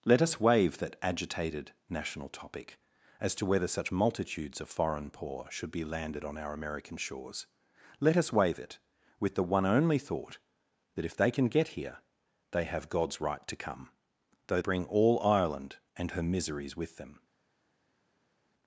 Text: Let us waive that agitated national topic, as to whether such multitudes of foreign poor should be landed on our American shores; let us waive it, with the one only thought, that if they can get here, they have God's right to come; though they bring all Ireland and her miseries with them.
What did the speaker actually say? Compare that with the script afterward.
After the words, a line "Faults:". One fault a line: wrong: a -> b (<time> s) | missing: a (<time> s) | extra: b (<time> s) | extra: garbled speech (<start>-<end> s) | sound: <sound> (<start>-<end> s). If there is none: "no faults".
Let us waive that agitated national topic, as to whether such multitudes of foreign poor should be landed on our American shores; let us waive it, with the one only thought, that if they can get here, they have God's right to come; though bring all Ireland and her miseries with them.
Faults:
missing: they (14.6 s)